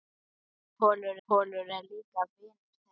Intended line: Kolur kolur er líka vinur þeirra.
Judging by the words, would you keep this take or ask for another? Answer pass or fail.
pass